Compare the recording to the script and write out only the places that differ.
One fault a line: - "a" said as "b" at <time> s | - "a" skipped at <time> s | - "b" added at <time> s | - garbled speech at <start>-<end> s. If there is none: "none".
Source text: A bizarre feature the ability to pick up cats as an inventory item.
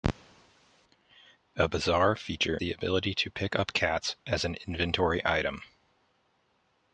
none